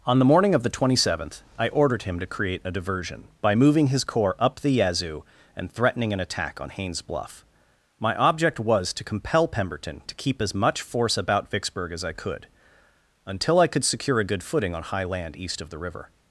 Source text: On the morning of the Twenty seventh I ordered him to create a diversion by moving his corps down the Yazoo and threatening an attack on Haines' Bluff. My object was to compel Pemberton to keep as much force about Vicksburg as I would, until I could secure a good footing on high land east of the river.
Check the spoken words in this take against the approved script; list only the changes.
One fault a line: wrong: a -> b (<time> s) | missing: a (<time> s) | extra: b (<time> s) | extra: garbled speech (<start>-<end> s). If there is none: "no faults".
wrong: down -> up (4.4 s)
wrong: would -> could (12.1 s)